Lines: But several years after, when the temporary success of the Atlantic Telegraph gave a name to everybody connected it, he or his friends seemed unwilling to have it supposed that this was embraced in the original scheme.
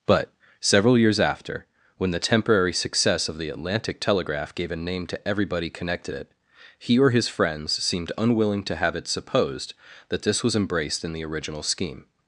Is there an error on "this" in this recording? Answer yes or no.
no